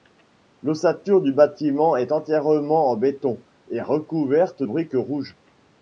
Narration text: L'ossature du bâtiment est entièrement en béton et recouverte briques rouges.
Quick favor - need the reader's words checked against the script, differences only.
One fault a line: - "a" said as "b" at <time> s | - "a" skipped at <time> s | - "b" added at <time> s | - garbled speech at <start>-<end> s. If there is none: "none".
none